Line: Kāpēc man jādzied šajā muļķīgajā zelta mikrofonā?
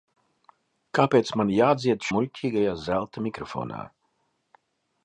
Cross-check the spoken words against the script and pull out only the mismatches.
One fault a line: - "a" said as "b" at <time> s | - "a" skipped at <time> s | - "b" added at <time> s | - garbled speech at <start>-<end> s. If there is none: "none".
- "šajā" skipped at 2.1 s